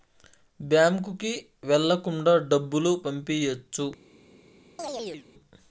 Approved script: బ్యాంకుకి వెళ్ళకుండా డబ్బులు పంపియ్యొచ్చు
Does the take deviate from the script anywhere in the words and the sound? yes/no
yes